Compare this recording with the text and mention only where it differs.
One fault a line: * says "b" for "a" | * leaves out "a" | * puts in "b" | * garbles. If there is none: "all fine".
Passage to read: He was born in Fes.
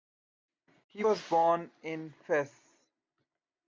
all fine